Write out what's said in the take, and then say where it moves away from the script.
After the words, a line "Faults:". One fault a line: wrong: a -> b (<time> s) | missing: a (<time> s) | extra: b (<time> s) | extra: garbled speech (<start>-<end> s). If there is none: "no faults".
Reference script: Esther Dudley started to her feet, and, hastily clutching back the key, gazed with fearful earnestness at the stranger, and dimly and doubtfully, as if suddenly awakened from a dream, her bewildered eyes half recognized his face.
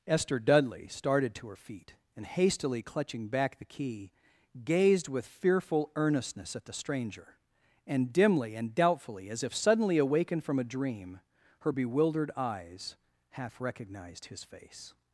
Esther Dudley started to her feet, and, hastily clutching back the key, gazed with fearful earnestness at the stranger, and dimly and doubtfully, as if suddenly awakened from a dream, her bewildered eyes half recognized his face.
Faults:
no faults